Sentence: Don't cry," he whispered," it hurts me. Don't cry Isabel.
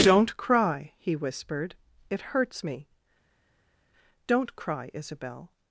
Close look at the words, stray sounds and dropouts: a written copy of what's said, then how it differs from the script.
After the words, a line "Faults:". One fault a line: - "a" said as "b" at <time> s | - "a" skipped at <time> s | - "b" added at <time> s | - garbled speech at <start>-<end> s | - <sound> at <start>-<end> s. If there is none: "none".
Don't cry," he whispered," it hurts me. Don't cry Isabel.
Faults:
none